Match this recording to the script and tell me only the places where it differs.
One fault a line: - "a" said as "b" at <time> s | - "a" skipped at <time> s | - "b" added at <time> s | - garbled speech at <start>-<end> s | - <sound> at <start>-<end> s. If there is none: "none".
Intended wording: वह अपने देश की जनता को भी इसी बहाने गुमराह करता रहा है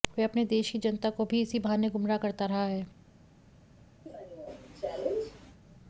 - cough at 4.1-5.6 s